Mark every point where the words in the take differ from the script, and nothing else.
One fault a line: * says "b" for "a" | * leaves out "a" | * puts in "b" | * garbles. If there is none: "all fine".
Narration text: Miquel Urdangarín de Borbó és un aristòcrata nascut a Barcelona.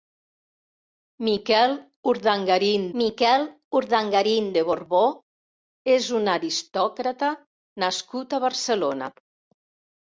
* puts in "miquel Urdangarín"